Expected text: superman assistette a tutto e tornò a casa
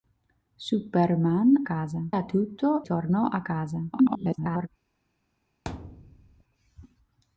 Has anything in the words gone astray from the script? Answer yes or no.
yes